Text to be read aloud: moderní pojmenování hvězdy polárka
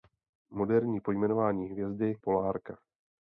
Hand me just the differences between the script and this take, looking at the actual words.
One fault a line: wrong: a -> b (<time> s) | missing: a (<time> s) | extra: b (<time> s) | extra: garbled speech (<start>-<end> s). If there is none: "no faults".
no faults